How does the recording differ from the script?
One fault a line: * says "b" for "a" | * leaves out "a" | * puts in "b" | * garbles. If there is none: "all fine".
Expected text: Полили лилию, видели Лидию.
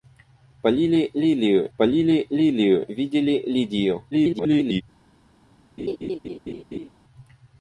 * puts in "полили лилию"
* garbles